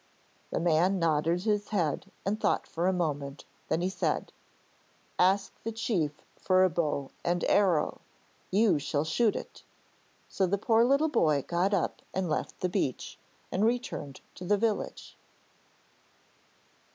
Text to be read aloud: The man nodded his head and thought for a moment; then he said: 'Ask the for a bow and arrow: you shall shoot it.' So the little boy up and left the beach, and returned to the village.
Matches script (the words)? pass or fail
fail